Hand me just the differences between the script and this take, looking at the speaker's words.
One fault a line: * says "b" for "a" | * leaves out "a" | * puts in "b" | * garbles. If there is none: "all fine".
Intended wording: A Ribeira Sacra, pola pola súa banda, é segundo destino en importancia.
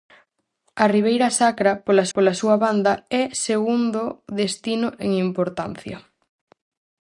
all fine